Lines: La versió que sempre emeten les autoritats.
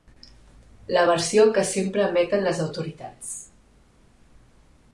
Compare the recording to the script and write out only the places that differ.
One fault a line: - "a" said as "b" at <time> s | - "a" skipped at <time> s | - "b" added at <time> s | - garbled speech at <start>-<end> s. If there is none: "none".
none